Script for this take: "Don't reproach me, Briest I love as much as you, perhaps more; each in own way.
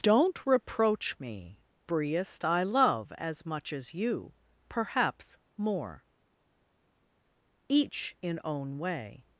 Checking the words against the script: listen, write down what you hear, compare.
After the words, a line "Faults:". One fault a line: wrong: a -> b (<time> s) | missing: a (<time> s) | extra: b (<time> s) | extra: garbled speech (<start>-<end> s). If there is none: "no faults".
"Don't reproach me, Briest I love as much as you, perhaps more; each in own way.
Faults:
no faults